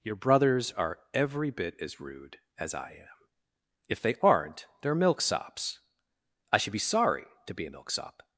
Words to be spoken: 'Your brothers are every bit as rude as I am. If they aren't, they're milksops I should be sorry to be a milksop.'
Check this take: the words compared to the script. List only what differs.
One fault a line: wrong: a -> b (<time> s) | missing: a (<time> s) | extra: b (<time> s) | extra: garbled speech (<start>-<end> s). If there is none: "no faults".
no faults